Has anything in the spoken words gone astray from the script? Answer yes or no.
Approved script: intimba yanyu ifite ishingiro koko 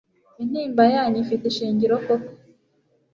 no